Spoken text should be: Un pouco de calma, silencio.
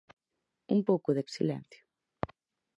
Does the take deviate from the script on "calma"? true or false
true